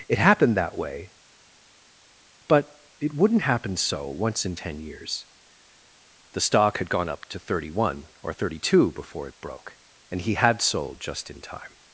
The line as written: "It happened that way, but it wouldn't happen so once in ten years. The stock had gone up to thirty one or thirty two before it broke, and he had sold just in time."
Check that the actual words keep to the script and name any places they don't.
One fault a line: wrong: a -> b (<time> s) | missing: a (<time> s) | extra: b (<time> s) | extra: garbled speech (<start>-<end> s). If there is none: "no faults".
no faults